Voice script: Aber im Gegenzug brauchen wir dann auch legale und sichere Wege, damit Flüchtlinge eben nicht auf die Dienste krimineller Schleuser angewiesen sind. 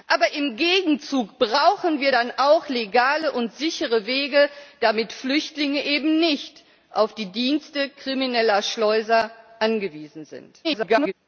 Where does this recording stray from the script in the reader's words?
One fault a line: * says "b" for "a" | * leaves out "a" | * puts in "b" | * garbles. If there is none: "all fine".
* garbles